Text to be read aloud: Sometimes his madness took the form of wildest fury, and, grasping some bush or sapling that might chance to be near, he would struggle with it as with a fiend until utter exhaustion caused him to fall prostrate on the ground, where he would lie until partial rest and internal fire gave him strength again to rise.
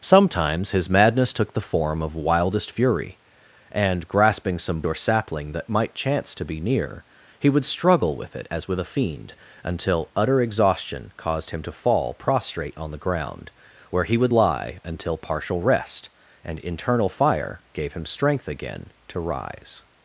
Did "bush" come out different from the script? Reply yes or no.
yes